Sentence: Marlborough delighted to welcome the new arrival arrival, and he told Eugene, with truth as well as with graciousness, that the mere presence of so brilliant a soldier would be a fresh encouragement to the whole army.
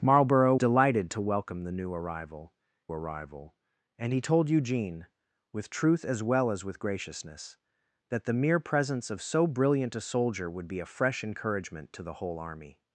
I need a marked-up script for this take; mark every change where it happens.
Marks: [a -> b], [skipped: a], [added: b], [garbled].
Marlborough delighted to welcome the new arrival arrival, and he told Eugene, with truth as well as with graciousness, that the mere presence of so brilliant a soldier would be a fresh encouragement to the whole army.